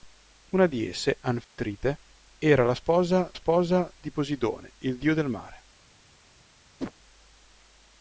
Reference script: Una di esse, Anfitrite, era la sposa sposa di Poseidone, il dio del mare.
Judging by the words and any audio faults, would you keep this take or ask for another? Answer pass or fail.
fail